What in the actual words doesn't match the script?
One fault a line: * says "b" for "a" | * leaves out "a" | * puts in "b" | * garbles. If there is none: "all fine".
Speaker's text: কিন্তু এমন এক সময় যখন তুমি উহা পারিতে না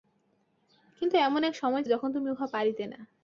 all fine